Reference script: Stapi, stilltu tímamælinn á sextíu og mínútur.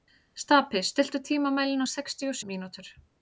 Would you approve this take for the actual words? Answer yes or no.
yes